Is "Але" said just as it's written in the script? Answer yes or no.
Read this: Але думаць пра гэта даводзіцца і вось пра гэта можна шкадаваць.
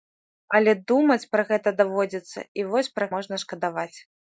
yes